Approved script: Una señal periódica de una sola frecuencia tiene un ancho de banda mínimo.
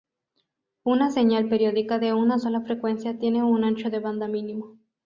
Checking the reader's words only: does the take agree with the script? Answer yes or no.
yes